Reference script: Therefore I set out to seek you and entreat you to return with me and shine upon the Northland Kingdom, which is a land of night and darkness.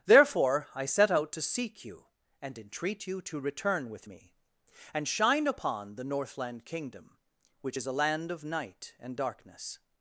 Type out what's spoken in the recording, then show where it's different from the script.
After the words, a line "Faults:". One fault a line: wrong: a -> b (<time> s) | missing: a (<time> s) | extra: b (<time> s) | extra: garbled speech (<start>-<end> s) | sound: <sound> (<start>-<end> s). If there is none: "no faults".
Therefore I set out to seek you and entreat you to return with me and shine upon the Northland Kingdom, which is a land of night and darkness.
Faults:
no faults